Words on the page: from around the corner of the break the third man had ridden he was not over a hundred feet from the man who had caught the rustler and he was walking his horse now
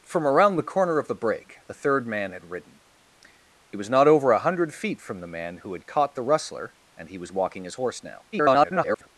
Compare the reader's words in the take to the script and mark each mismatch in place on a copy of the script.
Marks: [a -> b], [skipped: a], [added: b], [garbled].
from around the corner of the break the third man had ridden he was not over a hundred feet from the man who had caught the rustler and he was walking his horse now [garbled]